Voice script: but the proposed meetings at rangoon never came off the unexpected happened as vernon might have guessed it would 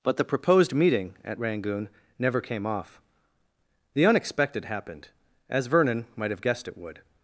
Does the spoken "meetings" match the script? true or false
false